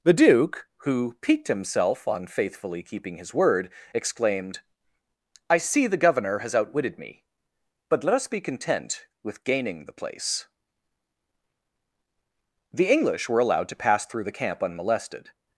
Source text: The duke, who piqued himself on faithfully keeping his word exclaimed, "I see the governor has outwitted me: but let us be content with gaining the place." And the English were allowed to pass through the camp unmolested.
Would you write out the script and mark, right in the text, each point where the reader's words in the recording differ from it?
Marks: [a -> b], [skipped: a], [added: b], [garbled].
The duke, who piqued himself on faithfully keeping his word exclaimed, "I see the governor has outwitted me: but let us be content with gaining the place." [skipped: And] the English were allowed to pass through the camp unmolested.